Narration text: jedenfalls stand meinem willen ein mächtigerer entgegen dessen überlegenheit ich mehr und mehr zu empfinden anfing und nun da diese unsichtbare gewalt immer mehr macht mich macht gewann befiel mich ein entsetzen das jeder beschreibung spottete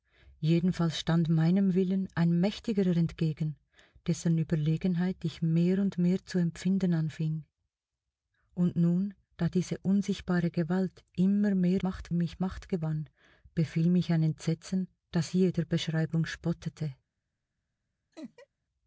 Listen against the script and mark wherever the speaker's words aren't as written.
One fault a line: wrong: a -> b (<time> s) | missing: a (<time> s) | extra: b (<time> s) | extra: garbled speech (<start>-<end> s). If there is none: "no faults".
no faults